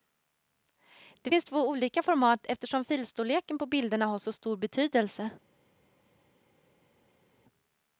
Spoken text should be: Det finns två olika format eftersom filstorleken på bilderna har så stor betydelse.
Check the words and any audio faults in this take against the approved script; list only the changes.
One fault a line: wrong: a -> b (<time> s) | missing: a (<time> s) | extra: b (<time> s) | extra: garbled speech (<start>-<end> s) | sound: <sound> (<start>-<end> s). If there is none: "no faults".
no faults